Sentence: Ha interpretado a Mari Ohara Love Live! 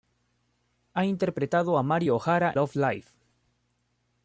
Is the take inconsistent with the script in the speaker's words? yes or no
no